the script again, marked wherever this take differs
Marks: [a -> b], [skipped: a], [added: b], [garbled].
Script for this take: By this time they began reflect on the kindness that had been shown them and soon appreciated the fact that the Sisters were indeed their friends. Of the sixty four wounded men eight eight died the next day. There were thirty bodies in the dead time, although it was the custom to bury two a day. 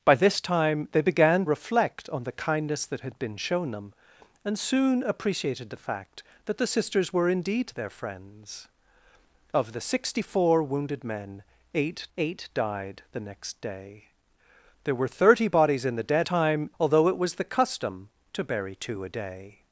By this time they began reflect on the kindness that had been shown them and soon appreciated the fact that the Sisters were indeed their friends. Of the sixty four wounded men eight eight died the next day. There were thirty bodies in the dead time, although it was the custom to bury two a day.